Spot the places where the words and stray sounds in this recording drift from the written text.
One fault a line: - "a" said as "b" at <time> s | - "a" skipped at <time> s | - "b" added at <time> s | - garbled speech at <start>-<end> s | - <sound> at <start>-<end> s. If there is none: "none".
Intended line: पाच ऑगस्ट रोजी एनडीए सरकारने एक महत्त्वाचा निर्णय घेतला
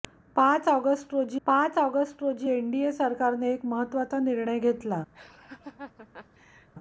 - "पाच ऑगस्ट रोजी" added at 1.5 s
- laugh at 5.1-6.7 s